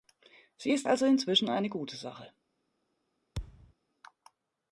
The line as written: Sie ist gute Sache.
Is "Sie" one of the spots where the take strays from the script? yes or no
no